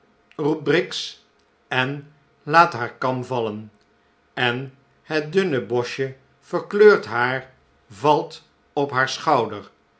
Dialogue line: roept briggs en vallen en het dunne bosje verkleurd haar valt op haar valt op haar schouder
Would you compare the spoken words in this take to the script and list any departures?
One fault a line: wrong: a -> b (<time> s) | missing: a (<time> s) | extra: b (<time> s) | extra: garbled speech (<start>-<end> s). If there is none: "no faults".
extra: laat haar kam (2.4 s)
missing: valt op haar (9.1 s)